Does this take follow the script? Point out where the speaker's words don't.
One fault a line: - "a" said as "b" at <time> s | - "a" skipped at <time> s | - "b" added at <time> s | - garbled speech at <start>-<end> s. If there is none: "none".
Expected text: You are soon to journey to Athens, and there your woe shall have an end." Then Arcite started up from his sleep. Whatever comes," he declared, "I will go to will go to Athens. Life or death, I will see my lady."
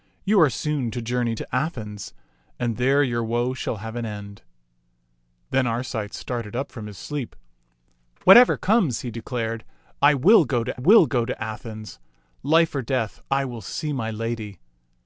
none